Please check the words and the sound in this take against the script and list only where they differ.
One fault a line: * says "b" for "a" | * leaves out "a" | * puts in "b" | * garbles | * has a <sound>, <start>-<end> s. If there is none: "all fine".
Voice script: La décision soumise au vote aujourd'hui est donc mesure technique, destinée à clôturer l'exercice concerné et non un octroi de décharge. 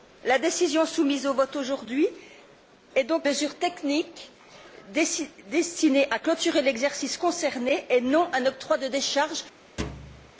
* has a thud, 9.8-10.3 s